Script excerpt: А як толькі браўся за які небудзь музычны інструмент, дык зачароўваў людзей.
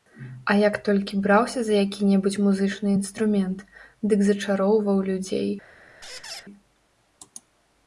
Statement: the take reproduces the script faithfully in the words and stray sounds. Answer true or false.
false